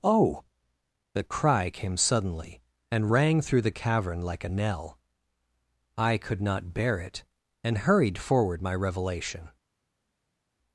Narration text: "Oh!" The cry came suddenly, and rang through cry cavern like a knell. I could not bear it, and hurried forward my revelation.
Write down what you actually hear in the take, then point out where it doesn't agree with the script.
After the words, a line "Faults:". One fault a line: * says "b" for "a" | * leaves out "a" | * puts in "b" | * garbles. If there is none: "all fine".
"Oh!" The cry came suddenly, and rang through the cavern like a knell. I could not bear it, and hurried forward my revelation.
Faults:
* says "the" for "cry"